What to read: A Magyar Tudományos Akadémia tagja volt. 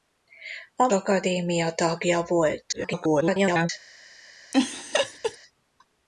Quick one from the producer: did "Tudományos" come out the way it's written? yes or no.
no